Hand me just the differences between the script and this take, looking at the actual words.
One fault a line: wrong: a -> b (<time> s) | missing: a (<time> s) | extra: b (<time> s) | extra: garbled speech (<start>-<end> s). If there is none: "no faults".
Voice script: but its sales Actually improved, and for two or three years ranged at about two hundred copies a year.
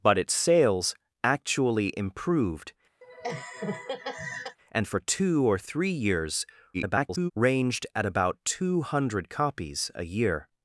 extra: garbled speech (6.7-7.3 s)